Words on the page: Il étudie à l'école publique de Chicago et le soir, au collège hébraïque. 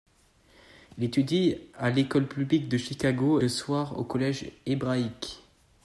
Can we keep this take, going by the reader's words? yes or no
no